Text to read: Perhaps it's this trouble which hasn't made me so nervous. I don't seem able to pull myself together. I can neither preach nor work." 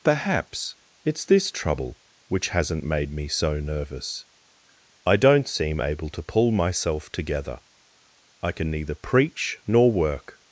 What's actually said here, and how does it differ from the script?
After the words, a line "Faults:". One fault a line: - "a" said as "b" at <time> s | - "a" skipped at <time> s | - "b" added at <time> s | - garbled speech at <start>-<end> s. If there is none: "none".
Perhaps it's this trouble which hasn't made me so nervous. I don't seem able to pull myself together. I can neither preach nor work."
Faults:
none